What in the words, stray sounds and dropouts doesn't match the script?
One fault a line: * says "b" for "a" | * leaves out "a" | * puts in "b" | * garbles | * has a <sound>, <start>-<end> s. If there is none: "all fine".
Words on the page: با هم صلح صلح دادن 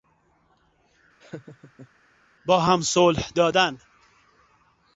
* has a laugh, 1.2-1.9 s
* leaves out "صلح"